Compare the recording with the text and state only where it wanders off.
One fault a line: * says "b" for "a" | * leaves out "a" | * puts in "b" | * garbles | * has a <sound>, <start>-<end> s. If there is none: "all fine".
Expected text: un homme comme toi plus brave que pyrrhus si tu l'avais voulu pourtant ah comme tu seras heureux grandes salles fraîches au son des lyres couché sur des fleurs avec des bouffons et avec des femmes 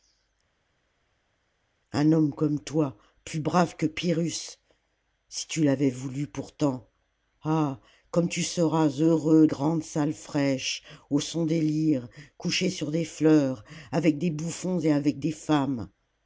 all fine